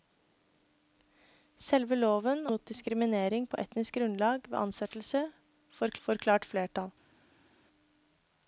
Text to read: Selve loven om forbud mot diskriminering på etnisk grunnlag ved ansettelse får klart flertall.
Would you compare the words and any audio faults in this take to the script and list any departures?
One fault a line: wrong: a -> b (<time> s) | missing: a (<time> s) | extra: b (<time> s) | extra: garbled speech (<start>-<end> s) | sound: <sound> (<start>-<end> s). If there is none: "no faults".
missing: om forbud (2.5 s)
extra: får (6.1 s)